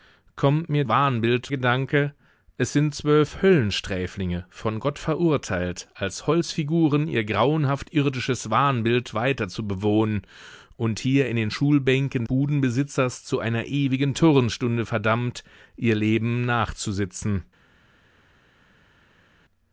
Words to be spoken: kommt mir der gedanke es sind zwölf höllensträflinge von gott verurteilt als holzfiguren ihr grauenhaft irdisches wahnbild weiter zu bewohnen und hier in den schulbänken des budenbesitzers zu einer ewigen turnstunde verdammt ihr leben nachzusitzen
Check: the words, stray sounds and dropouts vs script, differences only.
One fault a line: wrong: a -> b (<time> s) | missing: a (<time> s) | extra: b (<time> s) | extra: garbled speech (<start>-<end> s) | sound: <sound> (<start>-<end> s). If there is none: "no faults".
wrong: der -> wahnbild (0.9 s)
missing: des (12.2 s)